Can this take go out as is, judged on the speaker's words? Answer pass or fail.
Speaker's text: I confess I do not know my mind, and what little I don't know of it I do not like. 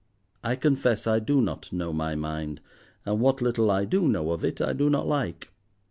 fail